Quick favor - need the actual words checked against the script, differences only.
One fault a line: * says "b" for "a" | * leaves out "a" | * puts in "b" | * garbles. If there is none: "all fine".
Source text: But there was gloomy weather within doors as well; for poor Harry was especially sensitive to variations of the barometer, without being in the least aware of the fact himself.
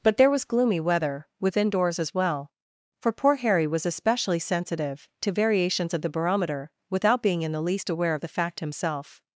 all fine